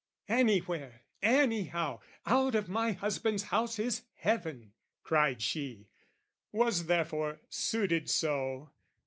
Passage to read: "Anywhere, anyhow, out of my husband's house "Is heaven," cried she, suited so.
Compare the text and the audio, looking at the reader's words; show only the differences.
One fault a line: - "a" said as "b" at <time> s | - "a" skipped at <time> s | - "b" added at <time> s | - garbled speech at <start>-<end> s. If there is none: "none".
- "was therefore" added at 6.5 s